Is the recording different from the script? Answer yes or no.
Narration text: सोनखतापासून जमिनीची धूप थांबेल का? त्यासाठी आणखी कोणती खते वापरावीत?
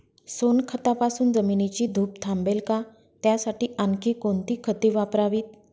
no